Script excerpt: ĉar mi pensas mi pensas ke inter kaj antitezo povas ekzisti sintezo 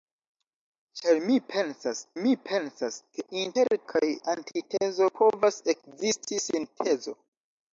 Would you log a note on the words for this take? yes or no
no